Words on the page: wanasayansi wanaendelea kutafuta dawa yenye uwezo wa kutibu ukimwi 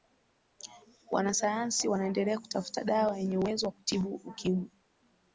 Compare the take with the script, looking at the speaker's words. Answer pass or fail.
pass